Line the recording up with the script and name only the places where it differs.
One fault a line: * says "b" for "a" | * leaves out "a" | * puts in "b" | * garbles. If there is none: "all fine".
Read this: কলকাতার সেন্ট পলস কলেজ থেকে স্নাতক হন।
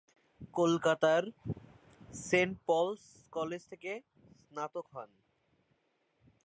all fine